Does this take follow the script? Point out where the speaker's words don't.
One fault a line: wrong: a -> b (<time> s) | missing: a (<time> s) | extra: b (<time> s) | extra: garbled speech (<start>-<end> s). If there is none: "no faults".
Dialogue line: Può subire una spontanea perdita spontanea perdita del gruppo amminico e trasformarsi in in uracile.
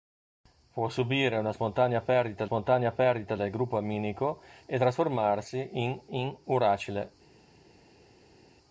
no faults